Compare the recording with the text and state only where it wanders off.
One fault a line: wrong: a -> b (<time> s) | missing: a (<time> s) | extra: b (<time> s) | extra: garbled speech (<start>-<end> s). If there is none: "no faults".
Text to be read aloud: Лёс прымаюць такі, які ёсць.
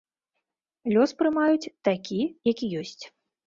no faults